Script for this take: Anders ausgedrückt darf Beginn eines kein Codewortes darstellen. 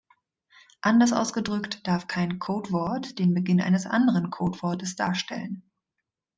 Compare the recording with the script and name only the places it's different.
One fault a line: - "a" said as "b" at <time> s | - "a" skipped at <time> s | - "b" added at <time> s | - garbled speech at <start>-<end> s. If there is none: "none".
- "kein Codewort den" added at 2.1 s
- "kein" said as "anderen" at 3.9 s